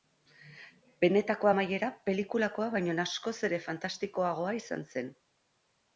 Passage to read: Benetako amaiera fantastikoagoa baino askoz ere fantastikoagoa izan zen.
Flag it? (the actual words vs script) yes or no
yes